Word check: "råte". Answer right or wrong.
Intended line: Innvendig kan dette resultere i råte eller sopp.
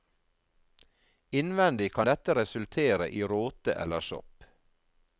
right